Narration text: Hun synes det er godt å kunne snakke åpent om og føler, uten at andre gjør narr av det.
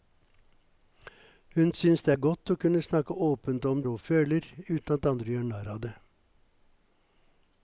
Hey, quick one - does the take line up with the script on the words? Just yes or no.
yes